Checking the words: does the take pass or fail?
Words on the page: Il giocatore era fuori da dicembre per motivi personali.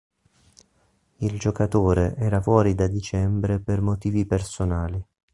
pass